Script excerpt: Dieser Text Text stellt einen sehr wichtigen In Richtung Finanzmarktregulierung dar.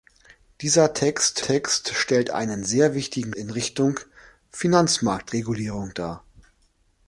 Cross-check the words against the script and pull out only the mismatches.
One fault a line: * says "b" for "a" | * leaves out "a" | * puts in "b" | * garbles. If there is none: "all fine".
all fine